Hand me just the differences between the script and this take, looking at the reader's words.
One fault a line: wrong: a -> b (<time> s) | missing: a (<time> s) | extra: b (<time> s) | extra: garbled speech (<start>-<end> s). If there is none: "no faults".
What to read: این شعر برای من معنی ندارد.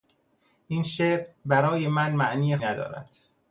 no faults